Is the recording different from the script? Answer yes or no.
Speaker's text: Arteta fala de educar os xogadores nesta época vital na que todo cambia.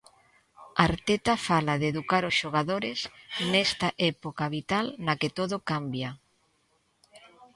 no